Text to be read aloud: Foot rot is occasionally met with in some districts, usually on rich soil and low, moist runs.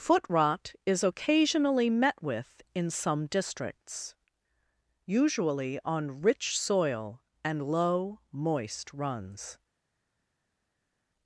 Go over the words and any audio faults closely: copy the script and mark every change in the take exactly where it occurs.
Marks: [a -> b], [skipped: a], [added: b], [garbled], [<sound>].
Foot rot is occasionally met with in some districts, usually on rich soil and low, moist runs.